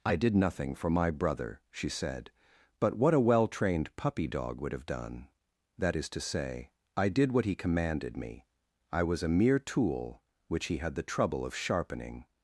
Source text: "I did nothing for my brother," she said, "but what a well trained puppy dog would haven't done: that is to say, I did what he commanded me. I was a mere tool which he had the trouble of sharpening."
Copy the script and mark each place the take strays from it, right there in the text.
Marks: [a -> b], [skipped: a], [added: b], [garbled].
"I did nothing for my brother," she said, "but what a well trained puppy dog would [haven't -> have] done: that is to say, I did what he commanded me. I was a mere tool which he had the trouble of sharpening."